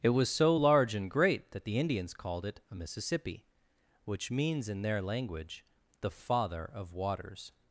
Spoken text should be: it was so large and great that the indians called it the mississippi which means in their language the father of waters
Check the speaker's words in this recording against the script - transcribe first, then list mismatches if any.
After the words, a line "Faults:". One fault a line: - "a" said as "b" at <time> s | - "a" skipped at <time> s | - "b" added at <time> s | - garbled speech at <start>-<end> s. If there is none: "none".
it was so large and great that the indians called it a mississippi which means in their language the father of waters
Faults:
- "the" said as "a" at 2.7 s